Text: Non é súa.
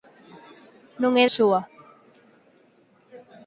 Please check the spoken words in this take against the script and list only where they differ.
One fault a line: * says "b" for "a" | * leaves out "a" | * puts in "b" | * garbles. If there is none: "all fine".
all fine